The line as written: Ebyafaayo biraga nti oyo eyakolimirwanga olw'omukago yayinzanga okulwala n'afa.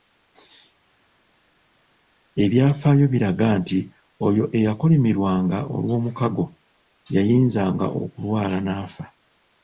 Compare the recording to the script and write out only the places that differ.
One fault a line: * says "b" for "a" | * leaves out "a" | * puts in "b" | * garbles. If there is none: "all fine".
all fine